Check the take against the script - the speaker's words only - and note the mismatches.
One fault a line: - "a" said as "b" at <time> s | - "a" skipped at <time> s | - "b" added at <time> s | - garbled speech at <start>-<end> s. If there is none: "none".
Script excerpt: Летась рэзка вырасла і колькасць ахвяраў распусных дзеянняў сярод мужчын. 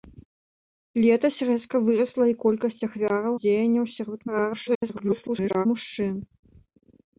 - "распусных" skipped at 3.3 s
- garbled speech at 4.3-5.7 s